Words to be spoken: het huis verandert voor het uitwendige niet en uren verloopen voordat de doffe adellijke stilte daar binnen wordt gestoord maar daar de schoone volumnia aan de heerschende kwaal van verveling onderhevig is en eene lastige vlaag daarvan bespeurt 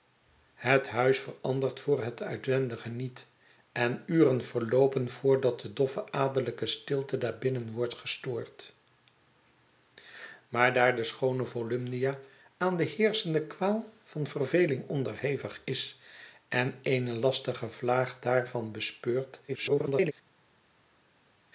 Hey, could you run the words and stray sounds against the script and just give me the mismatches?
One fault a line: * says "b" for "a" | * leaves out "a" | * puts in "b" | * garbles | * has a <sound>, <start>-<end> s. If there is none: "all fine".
* garbles